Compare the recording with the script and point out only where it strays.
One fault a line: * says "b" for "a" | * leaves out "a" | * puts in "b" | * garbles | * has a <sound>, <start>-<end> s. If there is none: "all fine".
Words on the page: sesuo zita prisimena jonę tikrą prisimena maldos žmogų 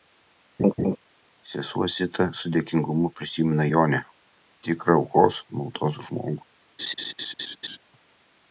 * has a laugh, 0.6-1.0 s
* puts in "su dėkingumu"
* says "aukos" for "prisimena"
* has a laugh, 6.8-7.8 s